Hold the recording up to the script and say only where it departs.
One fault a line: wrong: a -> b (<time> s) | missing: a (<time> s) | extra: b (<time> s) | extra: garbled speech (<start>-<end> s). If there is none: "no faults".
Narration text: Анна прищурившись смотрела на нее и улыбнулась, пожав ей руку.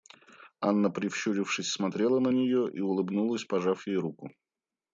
no faults